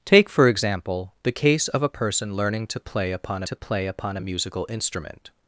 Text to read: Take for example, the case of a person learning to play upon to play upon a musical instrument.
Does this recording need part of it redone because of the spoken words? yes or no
no